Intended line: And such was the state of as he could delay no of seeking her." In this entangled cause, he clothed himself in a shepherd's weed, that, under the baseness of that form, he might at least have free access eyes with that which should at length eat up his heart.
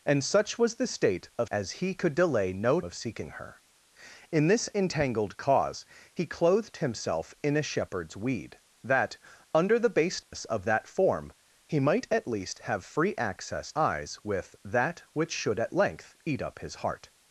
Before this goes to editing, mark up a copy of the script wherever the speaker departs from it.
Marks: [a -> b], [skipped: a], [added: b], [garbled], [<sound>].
And such was the state of as he could delay no of seeking her." In this entangled cause, he clothed himself in a shepherd's weed, that, under the baseness [dropout] of that form, he might at least have free access eyes with that which should at length eat up his heart.